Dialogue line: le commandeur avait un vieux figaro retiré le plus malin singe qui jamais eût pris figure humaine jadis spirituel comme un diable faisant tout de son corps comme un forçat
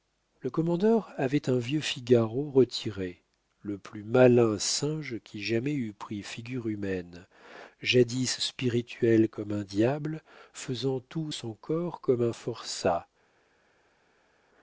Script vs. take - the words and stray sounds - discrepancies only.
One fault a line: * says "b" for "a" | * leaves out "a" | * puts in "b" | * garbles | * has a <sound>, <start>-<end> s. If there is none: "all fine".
* leaves out "de"